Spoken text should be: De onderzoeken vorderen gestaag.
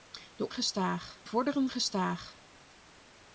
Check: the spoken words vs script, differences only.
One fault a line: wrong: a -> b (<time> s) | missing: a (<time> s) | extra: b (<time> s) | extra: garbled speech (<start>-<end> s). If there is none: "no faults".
wrong: onderzoeken -> gestaag (0.5 s)